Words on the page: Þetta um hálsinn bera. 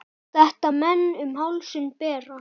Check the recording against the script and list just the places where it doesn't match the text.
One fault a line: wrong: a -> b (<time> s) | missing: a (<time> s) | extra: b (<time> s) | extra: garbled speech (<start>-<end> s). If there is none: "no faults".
extra: menn (0.7 s)